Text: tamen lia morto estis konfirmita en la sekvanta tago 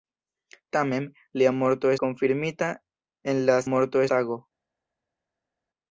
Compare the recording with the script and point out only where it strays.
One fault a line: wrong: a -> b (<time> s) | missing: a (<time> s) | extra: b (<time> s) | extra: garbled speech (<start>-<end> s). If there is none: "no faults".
missing: estis (1.9 s)
wrong: sekvanta -> morto (3.7 s)